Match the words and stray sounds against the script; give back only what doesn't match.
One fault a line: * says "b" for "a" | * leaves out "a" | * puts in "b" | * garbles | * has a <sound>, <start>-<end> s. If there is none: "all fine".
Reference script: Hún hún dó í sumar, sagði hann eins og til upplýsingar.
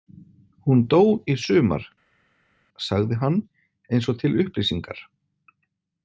* leaves out "hún"